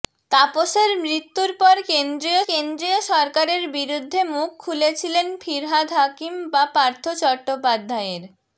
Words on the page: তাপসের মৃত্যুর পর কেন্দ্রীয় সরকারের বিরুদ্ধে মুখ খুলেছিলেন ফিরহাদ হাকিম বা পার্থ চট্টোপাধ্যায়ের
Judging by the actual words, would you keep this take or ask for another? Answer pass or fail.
fail